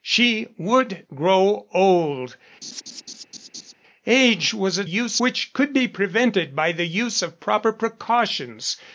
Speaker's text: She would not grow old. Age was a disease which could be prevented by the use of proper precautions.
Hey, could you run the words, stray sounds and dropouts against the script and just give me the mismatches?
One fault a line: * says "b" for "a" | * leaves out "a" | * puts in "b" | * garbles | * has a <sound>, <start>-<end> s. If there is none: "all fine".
* leaves out "not"
* has a laugh, 2.6-3.7 s
* says "use" for "disease"